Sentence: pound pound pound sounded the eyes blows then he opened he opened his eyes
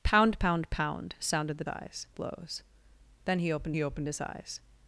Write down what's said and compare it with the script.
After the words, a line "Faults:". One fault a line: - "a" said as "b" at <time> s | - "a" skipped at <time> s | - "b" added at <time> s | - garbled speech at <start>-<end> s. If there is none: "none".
pound pound pound sounded the eyes blows then he opened he opened his eyes
Faults:
none